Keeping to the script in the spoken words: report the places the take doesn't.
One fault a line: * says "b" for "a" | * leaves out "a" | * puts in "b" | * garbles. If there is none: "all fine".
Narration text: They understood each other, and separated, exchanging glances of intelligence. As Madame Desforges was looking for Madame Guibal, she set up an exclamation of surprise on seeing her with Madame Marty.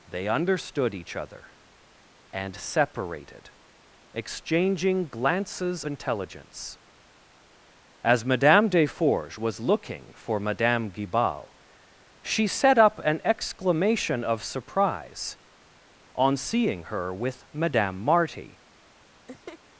* leaves out "of"